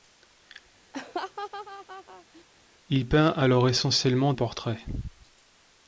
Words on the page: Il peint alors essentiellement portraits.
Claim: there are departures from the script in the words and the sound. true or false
true